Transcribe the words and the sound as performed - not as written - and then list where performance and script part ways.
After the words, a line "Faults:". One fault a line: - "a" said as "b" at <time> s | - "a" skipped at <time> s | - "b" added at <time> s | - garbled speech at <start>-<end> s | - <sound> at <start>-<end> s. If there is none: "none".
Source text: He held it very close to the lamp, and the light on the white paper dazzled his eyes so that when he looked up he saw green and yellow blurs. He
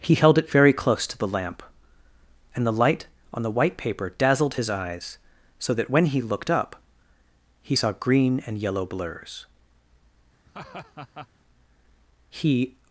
He held it very close to the lamp, and the light on the white paper dazzled his eyes so that when he looked up he saw green and yellow blurs. He
Faults:
- laugh at 10.5-11.3 s